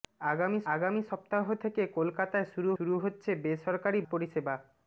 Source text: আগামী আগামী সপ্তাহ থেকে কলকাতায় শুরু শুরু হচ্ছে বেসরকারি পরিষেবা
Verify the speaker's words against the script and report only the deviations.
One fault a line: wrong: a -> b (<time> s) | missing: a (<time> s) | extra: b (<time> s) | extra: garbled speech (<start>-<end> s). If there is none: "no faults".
no faults